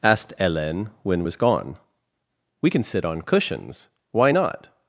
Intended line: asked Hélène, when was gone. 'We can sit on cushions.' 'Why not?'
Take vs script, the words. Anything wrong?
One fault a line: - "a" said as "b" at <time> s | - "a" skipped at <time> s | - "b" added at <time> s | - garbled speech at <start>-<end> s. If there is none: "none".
none